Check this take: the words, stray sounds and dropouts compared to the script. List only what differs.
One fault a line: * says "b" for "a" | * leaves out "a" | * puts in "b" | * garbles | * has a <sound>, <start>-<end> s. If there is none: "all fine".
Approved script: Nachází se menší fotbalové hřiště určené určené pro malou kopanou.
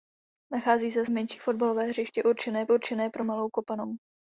all fine